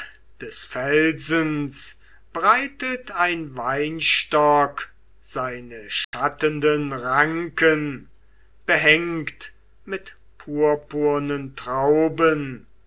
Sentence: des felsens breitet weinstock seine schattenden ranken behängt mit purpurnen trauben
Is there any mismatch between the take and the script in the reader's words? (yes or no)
yes